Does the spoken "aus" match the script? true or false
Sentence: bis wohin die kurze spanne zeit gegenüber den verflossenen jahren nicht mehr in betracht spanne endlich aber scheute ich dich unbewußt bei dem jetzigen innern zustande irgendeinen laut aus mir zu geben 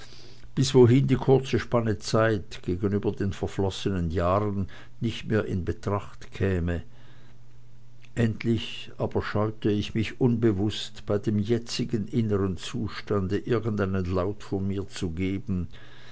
false